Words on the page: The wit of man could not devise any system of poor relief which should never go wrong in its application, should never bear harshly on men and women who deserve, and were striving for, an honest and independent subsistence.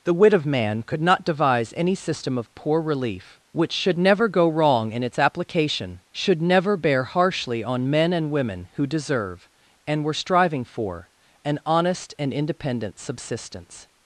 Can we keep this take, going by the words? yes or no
yes